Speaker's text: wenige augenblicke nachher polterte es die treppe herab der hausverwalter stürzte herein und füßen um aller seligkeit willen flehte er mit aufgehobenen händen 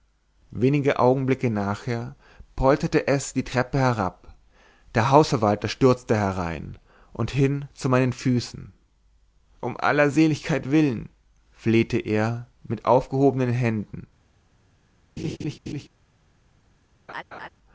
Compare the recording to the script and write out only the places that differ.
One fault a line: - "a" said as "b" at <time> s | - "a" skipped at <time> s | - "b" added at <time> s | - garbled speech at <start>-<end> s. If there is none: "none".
- "hin zu meinen" added at 7.3 s